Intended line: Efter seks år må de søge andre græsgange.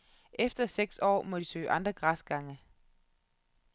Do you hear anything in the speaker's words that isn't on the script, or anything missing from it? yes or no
no